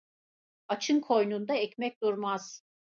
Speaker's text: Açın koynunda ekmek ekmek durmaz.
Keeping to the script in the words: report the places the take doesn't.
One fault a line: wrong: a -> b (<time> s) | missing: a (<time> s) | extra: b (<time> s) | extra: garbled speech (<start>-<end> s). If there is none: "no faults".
missing: ekmek (2.1 s)